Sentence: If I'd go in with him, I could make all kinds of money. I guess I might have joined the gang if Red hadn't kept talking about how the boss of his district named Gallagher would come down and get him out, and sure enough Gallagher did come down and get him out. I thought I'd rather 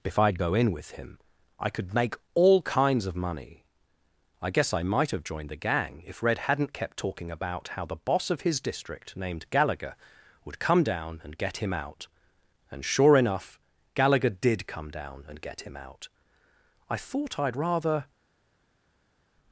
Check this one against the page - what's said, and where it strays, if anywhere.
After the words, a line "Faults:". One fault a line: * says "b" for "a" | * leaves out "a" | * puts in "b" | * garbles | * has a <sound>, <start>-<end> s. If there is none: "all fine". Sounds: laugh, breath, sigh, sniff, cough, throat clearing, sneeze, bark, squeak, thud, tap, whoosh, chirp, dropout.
If I'd go in with him, I could make all kinds of money. I guess I might have joined the gang if Red hadn't kept talking about how the boss of his district named Gallagher would come down and get him out, and sure enough Gallagher did come down and get him out. I thought I'd rather
Faults:
all fine